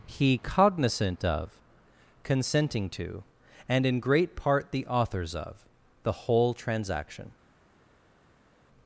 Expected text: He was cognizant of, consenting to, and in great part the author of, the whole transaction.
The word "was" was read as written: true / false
false